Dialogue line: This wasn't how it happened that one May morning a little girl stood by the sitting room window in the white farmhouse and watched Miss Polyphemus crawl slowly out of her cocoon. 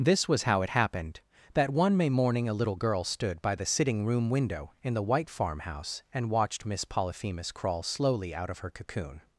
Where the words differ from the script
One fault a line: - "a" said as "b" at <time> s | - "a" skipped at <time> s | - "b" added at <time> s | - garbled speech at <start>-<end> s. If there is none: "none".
- "wasn't" said as "was" at 0.3 s